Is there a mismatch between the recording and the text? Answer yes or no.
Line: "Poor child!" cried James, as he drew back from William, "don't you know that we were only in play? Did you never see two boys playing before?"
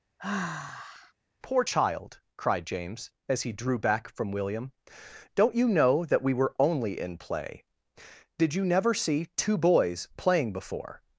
no